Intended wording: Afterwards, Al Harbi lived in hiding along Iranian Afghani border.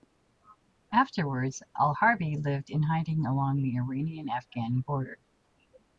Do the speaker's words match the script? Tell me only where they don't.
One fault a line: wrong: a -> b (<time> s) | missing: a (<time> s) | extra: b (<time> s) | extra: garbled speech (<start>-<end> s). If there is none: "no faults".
extra: the (3.6 s)